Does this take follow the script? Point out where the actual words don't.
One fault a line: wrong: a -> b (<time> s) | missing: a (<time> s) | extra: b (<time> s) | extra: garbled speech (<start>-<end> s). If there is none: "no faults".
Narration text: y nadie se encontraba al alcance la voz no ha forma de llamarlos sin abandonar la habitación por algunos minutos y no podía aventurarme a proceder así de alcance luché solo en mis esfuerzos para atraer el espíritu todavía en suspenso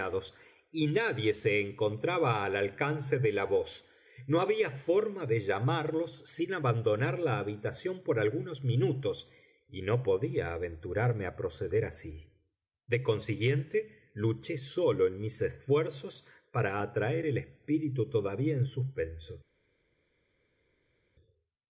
extra: de (3.2 s)
wrong: ha -> había (4.4 s)
wrong: alcance -> consiguiente (13.0 s)